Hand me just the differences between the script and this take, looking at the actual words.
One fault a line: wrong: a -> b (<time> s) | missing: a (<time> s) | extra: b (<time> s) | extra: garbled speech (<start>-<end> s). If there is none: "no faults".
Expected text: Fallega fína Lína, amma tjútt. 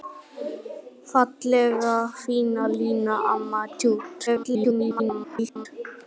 extra: garbled speech (4.3-5.7 s)